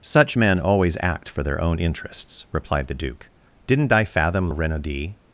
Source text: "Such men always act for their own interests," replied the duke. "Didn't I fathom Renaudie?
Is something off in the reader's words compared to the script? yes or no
no